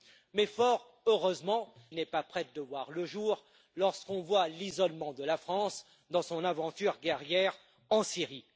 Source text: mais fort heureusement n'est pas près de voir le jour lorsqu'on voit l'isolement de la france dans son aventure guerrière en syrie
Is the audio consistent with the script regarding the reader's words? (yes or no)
yes